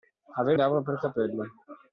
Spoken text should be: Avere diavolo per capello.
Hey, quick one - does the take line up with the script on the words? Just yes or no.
yes